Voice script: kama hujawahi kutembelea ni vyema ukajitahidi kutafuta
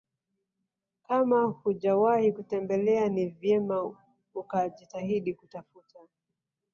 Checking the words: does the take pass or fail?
pass